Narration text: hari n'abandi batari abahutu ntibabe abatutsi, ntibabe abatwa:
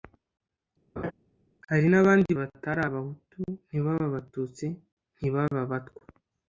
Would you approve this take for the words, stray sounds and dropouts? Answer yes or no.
no